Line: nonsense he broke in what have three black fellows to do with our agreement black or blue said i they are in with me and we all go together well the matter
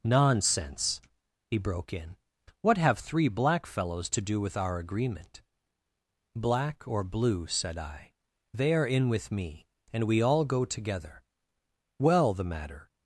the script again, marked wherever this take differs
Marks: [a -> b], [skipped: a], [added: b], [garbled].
nonsense he broke in what have three black fellows to do with our agreement black or blue said i they are in with me and we all go together well the matter